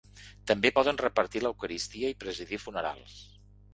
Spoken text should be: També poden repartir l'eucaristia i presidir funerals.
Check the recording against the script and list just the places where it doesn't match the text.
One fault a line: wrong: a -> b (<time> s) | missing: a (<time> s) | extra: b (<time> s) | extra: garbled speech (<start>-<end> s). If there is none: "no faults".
no faults